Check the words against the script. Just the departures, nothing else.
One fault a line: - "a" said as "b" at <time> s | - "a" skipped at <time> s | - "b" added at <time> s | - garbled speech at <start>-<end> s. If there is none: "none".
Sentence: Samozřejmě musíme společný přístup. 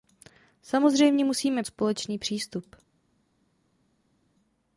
none